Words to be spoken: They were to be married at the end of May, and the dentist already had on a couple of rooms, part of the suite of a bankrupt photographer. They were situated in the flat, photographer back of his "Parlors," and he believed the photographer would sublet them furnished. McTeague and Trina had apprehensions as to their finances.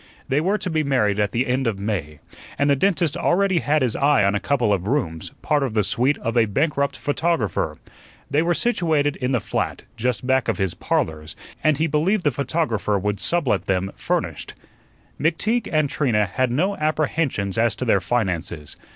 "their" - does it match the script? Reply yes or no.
yes